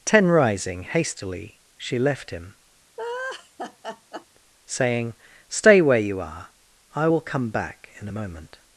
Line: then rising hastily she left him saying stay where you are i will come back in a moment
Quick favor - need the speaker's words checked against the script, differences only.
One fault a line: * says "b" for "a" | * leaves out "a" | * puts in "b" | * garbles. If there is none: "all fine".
* says "ten" for "then"